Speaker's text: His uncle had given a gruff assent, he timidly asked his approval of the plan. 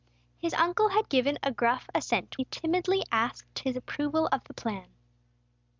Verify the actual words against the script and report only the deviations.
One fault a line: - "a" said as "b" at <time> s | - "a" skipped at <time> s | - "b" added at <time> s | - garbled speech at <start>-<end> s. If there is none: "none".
none